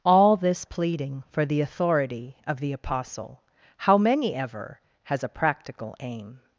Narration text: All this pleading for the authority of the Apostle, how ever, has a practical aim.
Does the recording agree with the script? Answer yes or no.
no